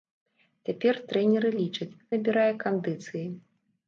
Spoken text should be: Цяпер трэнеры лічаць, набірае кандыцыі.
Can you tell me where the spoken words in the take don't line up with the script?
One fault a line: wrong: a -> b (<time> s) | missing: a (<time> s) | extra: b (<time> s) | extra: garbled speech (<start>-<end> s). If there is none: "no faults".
no faults